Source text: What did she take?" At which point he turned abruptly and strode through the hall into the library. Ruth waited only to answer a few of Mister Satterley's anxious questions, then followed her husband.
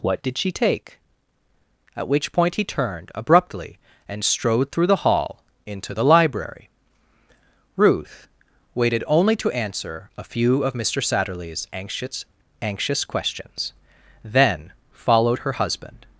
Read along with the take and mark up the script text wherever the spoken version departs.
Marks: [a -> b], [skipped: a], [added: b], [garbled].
What did she take?" At which point he turned abruptly and strode through the hall into the library. Ruth waited only to answer a few of Mister Satterley's anxious [added: anxious] questions, then followed her husband.